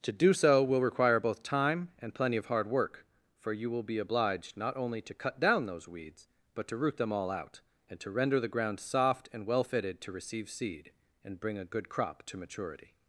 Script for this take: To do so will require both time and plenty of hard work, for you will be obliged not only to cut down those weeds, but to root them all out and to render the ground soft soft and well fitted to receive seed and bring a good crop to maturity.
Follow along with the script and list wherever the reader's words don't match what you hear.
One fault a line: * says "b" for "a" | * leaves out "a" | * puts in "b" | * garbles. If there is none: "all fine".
* leaves out "soft"